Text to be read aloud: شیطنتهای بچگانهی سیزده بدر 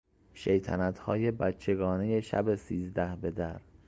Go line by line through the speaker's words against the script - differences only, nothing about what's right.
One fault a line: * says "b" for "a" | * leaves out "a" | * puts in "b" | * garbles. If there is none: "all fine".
* puts in "شب"